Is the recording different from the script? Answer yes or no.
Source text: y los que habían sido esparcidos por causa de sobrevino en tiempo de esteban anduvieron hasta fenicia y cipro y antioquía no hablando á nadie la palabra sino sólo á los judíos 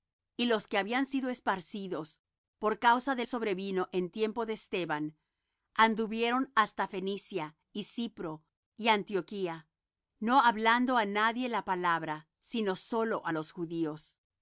no